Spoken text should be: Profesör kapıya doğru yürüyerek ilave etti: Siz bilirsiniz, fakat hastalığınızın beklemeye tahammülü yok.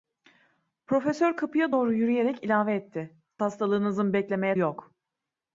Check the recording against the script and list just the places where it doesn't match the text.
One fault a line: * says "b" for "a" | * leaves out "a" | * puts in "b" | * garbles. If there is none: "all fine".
* leaves out "Siz bilirsiniz fakat"
* leaves out "tahammülü"